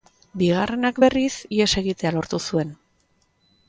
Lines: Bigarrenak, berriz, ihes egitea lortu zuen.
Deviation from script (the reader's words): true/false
false